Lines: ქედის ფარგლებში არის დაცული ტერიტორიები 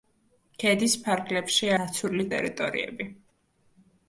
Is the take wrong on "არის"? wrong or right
wrong